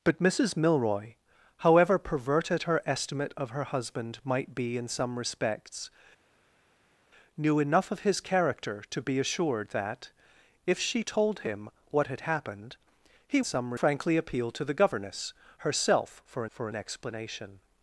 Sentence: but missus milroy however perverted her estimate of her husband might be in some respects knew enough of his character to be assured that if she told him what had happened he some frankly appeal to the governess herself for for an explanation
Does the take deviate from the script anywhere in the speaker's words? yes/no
no